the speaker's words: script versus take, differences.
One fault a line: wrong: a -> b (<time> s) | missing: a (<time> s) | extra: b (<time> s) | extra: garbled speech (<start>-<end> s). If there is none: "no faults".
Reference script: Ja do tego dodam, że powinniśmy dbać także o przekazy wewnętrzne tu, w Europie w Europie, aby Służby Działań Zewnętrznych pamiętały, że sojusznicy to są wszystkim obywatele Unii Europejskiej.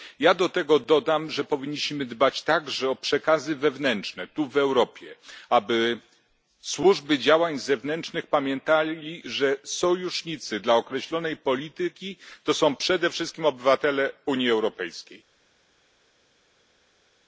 missing: w Europie (5.2 s)
extra: dla określonej polityki (10.6 s)
extra: przede (12.8 s)